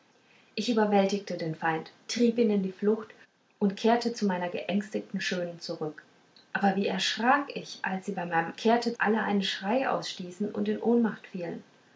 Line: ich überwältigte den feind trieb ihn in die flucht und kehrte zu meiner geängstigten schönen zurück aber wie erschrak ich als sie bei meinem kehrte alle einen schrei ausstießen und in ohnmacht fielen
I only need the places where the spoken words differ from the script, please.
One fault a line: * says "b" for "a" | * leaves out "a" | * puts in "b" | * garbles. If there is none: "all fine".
all fine